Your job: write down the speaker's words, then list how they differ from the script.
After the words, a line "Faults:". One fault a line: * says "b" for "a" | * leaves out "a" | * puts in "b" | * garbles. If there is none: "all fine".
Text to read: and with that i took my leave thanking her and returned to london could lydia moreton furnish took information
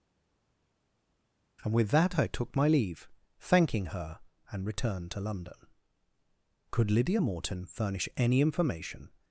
and with that i took my leave thanking her and returned to london could lydia moreton furnish any information
Faults:
* says "any" for "took"